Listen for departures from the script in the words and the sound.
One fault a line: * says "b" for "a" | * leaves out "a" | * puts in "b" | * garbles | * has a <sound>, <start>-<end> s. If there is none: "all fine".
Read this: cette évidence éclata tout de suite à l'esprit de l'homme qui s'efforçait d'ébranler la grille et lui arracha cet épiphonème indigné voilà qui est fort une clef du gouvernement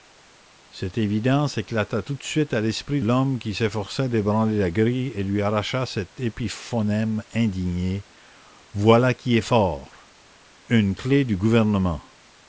* leaves out "de"